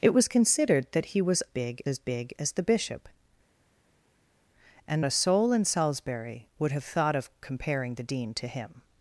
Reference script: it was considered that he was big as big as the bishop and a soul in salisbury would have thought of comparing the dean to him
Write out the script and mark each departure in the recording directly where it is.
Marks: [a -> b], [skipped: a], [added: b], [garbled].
it was considered that he was big as big as the bishop and a soul in salisbury would have thought of comparing the dean to him